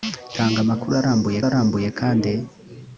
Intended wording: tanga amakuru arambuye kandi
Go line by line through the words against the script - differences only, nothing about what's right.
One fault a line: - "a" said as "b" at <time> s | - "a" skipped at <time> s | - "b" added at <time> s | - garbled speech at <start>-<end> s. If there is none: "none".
- "arambuye" added at 1.5 s